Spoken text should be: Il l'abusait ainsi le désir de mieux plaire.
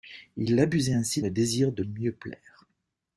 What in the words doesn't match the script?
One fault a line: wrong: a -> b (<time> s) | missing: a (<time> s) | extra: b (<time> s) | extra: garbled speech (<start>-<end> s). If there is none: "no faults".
no faults